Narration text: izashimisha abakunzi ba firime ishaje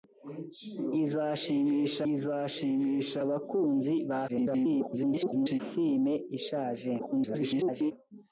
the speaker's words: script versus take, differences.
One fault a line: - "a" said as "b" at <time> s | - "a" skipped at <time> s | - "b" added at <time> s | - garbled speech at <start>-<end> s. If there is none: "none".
- "izashimisha" added at 2.1 s
- garbled speech at 4.3-5.6 s
- garbled speech at 7.0-7.9 s